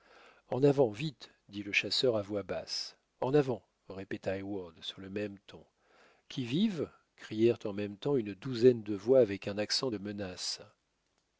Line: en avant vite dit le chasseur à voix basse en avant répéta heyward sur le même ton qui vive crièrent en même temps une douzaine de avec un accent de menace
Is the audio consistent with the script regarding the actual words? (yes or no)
no